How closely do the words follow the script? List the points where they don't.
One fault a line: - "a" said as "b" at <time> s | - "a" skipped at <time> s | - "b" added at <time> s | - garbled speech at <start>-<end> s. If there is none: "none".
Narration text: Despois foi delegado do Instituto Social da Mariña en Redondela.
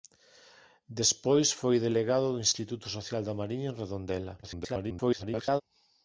- garbled speech at 4.4-5.6 s